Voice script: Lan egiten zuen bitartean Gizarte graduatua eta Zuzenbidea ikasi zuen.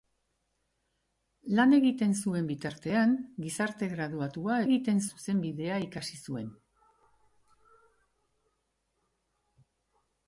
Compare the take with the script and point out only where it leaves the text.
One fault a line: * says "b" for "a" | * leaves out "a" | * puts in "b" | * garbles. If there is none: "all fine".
* says "egiten" for "eta"